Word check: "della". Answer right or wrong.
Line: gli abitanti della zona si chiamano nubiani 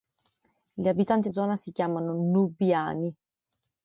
wrong